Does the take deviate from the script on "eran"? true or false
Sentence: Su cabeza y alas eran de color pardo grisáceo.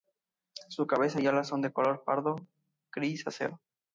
true